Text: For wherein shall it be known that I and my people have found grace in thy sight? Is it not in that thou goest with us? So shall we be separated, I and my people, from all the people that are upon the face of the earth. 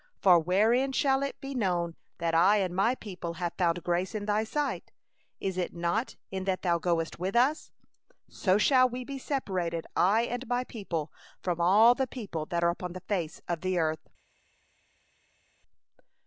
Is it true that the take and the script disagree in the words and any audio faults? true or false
false